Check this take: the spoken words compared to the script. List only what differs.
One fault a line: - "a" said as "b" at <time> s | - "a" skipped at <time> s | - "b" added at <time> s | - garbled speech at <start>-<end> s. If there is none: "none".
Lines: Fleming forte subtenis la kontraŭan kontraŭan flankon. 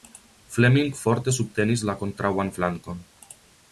- "kontraŭan" skipped at 2.5 s